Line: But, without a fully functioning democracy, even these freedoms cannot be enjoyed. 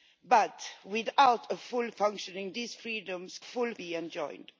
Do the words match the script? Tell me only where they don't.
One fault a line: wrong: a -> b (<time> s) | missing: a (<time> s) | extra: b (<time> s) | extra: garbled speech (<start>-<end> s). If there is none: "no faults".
missing: democracy even (2.5 s)
wrong: cannot -> fully (3.4 s)